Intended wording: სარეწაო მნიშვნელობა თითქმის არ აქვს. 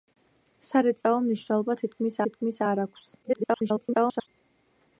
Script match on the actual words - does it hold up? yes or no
no